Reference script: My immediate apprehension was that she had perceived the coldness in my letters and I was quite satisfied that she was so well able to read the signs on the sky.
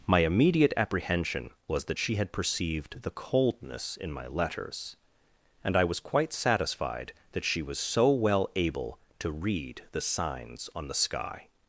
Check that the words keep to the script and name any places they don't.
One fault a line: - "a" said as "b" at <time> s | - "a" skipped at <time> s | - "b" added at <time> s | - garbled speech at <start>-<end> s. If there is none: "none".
none